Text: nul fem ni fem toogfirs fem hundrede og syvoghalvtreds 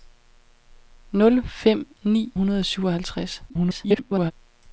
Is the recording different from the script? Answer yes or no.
yes